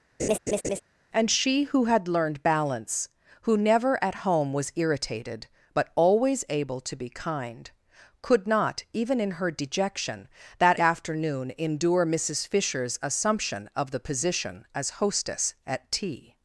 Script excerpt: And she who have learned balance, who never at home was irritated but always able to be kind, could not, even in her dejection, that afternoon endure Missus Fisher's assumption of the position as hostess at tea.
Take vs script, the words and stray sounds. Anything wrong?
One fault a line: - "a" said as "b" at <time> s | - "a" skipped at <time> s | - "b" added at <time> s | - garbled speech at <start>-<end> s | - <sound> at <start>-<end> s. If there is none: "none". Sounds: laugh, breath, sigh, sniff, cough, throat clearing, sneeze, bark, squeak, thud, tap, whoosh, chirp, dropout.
- laugh at 0.2-0.8 s
- "have" said as "had" at 1.9 s